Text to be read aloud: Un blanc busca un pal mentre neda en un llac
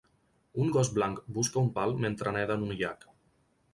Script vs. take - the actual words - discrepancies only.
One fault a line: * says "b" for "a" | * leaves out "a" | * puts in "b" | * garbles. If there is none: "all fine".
* puts in "gos"